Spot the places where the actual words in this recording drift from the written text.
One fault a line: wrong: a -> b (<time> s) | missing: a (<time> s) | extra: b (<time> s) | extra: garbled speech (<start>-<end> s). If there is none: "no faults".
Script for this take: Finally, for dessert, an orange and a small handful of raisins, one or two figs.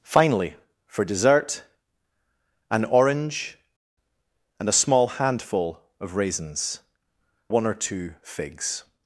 no faults